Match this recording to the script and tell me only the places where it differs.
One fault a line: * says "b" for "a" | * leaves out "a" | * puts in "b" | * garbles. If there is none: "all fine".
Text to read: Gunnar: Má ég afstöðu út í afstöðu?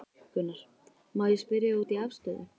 * says "spyrja" for "afstöðu"